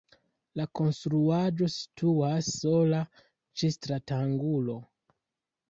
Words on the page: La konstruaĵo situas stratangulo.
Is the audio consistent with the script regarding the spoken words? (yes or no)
no